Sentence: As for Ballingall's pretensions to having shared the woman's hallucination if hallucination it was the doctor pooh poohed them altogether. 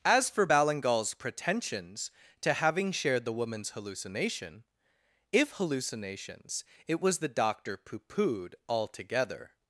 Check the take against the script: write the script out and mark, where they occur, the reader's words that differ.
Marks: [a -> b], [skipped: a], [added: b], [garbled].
As for Ballingall's pretensions to having shared the woman's hallucination if [hallucination -> hallucinations] it was the doctor pooh poohed [skipped: them] altogether.